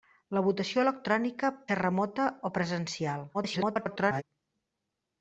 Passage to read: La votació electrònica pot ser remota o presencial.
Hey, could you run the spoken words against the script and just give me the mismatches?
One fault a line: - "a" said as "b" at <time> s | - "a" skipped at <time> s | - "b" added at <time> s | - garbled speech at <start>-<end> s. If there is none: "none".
- "pot" skipped at 1.5 s
- garbled speech at 3.3-4.2 s